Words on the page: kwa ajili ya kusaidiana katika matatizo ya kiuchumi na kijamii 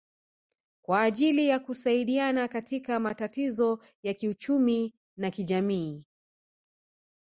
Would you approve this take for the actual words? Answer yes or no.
yes